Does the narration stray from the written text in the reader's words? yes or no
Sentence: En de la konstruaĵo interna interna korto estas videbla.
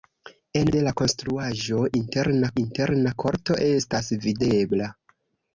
no